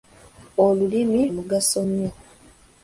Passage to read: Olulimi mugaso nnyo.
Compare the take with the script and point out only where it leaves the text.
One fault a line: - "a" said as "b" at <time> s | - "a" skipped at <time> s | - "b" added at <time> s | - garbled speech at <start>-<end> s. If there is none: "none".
none